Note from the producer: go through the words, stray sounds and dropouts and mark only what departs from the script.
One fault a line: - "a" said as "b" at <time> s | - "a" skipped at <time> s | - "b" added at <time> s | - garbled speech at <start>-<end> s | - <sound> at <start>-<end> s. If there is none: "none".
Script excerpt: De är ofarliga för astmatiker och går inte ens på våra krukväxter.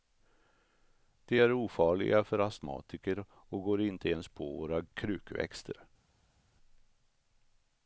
none